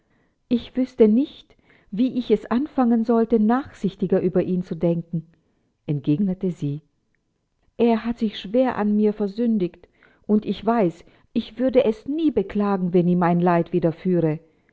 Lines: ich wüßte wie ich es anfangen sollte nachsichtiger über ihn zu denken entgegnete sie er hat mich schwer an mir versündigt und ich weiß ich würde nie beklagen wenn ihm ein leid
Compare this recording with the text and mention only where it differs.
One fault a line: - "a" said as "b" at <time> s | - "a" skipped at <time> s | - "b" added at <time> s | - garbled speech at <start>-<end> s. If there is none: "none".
- "nicht" added at 1.1 s
- "mich" said as "sich" at 8.2 s
- "es" added at 11.8 s